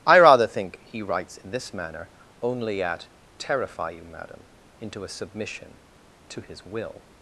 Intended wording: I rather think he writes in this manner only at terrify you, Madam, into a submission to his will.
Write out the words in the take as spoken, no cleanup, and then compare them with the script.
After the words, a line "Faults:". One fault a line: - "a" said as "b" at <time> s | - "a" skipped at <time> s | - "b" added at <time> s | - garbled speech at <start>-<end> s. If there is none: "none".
I rather think he writes in this manner only at terrify you, Madam, into a submission to his will.
Faults:
none